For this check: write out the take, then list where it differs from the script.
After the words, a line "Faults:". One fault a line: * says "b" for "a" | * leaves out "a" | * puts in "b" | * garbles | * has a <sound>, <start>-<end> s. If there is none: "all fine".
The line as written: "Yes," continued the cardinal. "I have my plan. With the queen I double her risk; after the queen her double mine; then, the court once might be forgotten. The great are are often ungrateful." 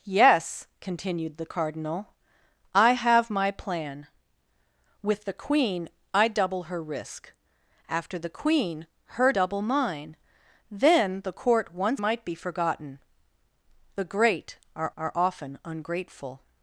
"Yes," continued the cardinal. "I have my plan. With the queen I double her risk; after the queen her double mine; then, the court once might be forgotten. The great are are often ungrateful."
Faults:
all fine